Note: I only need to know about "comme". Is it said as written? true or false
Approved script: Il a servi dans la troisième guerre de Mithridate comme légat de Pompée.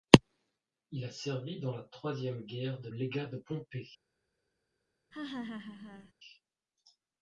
false